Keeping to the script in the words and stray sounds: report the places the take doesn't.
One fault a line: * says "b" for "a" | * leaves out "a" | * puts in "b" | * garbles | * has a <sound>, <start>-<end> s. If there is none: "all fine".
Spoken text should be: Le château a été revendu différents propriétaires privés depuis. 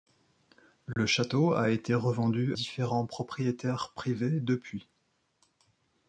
* has a dropout, 0.9-1.0 s